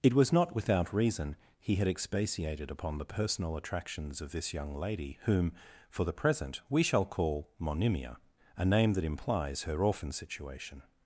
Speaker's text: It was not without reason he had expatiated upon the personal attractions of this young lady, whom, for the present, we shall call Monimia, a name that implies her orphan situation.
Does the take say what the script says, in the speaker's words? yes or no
yes